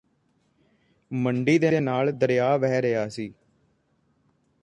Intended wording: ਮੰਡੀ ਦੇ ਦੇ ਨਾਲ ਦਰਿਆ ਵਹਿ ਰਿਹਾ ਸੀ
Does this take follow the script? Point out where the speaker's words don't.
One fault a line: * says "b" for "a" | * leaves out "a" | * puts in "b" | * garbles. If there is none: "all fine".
all fine